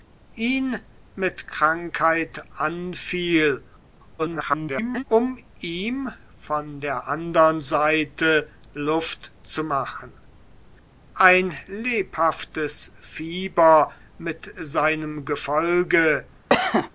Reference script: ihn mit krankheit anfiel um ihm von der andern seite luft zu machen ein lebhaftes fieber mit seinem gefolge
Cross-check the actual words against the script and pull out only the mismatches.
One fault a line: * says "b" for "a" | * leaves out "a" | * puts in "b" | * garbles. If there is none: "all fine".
* garbles